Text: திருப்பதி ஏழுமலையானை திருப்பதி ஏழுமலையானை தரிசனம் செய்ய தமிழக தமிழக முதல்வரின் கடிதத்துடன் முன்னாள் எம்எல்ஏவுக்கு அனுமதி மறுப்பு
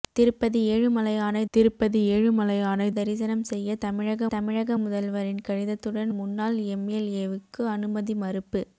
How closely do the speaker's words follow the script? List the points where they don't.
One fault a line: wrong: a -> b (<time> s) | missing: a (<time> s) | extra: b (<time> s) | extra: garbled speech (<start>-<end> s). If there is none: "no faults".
no faults